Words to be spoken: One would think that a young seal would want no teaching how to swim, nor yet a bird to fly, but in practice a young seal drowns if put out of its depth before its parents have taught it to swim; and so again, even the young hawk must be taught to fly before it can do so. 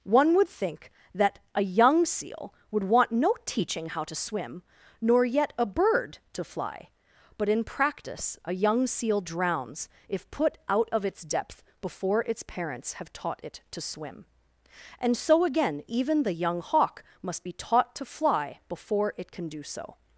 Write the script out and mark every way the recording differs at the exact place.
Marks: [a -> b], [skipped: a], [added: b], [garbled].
One would think that a young seal would want no teaching how to swim, nor yet a bird to fly, but in practice a young seal drowns if put out of its depth before its parents have taught it to swim; and so again, even the young hawk must be taught to fly before it can do so.